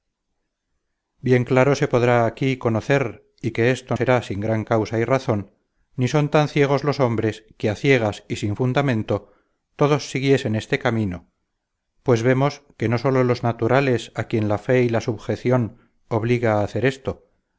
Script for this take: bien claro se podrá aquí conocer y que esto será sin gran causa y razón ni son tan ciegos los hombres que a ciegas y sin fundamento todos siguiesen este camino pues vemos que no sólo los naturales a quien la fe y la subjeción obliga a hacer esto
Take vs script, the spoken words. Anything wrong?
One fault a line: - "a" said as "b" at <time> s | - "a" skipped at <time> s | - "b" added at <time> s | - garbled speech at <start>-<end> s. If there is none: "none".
none